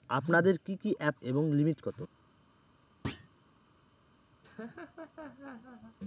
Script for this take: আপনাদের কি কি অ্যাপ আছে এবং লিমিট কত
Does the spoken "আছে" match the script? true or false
false